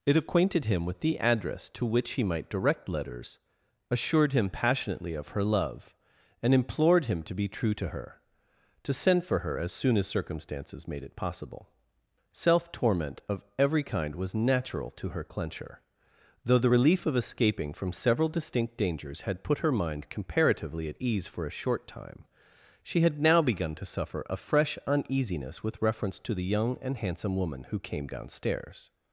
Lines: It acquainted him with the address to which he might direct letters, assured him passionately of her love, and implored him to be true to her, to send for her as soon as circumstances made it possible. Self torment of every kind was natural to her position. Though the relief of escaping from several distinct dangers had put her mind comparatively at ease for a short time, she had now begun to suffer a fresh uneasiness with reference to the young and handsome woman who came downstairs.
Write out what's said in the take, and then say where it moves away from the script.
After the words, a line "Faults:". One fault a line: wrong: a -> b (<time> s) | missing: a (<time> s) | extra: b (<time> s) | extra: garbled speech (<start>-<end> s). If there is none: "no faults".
It acquainted him with the address to which he might direct letters, assured him passionately of her love, and implored him to be true to her, to send for her as soon as circumstances made it possible. Self torment of every kind was natural to her clencher. Though the relief of escaping from several distinct dangers had put her mind comparatively at ease for a short time, she had now begun to suffer a fresh uneasiness with reference to the young and handsome woman who came downstairs.
Faults:
wrong: position -> clencher (15.2 s)